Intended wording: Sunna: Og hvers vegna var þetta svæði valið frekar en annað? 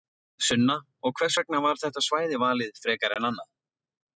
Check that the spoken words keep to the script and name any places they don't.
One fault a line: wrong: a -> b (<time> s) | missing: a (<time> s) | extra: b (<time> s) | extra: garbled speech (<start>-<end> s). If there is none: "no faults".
no faults